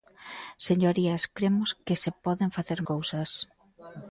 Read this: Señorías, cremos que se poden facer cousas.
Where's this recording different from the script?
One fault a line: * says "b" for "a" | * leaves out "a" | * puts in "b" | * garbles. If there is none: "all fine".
all fine